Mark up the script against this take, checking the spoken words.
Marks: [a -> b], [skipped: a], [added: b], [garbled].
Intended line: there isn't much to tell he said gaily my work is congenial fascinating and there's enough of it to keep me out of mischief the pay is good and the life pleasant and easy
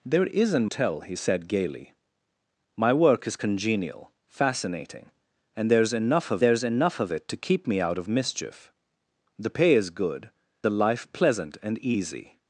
there isn't [skipped: much to] tell he said gaily my work is congenial fascinating and there's enough of [added: there's enough of] it to keep me out of mischief the pay is good [skipped: and] the life pleasant and easy